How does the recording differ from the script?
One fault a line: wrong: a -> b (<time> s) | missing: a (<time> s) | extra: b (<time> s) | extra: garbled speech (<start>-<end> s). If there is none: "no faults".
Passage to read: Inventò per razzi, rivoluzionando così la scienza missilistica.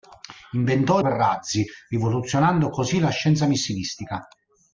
no faults